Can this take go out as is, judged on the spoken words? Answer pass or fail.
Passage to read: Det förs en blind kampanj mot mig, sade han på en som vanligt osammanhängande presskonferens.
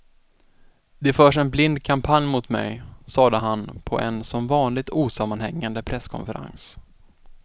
pass